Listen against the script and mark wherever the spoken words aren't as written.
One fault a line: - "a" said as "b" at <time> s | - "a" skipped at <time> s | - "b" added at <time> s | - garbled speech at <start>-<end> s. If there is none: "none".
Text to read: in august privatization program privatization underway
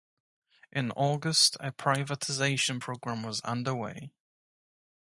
- "a" added at 1.6 s
- "privatization" said as "was" at 3.2 s